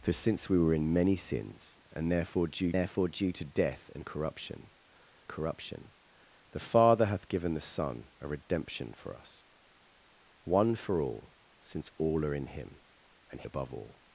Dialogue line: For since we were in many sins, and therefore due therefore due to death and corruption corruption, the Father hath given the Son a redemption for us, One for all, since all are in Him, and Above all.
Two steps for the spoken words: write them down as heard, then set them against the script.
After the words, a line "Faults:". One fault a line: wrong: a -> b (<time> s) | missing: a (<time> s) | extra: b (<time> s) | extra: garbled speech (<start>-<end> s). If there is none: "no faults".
For since we were in many sins, and therefore due therefore due to death and corruption corruption, the Father hath given the Son a redemption for us, One for all, since all are in Him, and Above all.
Faults:
no faults